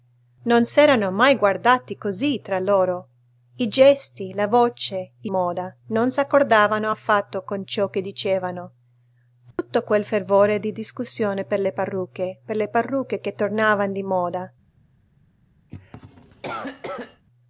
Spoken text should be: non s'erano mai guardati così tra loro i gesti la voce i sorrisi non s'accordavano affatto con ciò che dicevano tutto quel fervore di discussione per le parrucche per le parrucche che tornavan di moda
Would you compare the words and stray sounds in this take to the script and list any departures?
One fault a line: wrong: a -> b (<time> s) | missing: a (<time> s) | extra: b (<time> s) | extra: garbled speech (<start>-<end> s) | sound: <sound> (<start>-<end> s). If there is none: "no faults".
wrong: sorrisi -> moda (5.3 s)
sound: dropout (9.5-9.6 s)
sound: cough (15.7-17.2 s)